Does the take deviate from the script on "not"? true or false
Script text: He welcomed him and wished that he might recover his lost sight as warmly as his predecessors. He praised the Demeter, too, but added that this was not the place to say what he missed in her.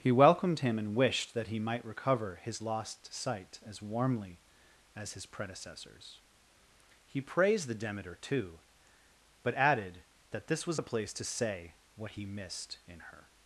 true